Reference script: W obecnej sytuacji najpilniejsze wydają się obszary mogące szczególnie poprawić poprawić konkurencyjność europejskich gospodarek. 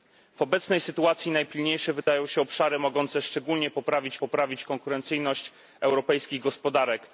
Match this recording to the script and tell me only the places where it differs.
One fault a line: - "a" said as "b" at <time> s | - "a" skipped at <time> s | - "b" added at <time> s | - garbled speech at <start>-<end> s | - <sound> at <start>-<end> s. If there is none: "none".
- dropout at 2.0-2.1 s